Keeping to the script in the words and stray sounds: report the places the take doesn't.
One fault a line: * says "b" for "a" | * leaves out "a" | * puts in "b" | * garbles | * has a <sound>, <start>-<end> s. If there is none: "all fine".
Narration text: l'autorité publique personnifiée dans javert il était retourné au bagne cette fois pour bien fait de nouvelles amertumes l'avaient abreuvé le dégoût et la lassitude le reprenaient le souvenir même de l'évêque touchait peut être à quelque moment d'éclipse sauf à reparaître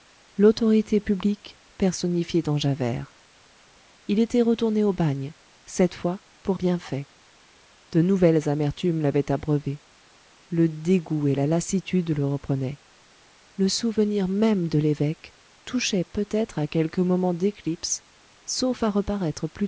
all fine